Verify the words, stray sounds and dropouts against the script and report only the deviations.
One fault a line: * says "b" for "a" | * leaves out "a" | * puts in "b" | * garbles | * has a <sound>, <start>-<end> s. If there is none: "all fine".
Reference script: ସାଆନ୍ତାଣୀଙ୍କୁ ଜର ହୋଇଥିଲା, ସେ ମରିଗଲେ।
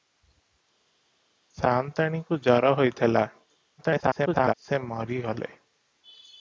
* garbles